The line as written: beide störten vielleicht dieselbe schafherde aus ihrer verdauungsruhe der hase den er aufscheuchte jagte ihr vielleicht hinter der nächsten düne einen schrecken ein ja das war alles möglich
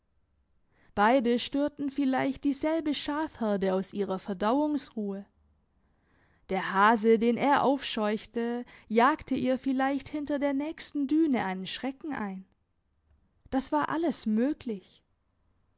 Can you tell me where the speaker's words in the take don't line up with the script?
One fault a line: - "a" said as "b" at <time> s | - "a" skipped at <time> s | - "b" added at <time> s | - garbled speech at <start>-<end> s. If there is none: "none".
- "ja" skipped at 12.4 s